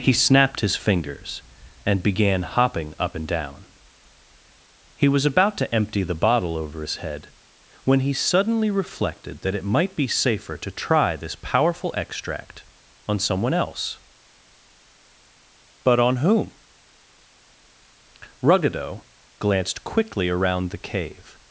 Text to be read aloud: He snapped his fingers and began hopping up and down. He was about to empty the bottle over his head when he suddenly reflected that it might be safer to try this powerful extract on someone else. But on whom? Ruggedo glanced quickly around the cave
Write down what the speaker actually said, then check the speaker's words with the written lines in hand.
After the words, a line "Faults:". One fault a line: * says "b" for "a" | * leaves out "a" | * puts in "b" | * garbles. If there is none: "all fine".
He snapped his fingers and began hopping up and down. He was about to empty the bottle over his head when he suddenly reflected that it might be safer to try this powerful extract on someone else. But on whom? Ruggedo glanced quickly around the cave
Faults:
all fine